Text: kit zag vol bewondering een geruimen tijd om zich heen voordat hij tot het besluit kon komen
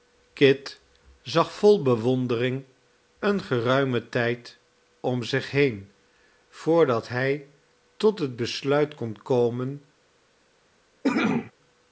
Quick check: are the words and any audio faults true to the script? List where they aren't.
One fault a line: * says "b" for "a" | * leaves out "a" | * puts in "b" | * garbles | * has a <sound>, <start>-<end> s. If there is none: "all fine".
* has a cough, 11.0-11.5 s